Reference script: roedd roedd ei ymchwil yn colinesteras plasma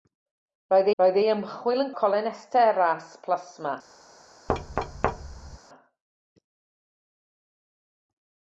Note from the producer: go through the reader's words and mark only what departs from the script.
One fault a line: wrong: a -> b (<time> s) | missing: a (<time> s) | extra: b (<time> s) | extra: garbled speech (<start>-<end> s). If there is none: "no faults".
no faults